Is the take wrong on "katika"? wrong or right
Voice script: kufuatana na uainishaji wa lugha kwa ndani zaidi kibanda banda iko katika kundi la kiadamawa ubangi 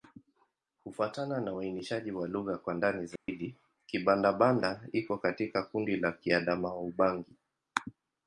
right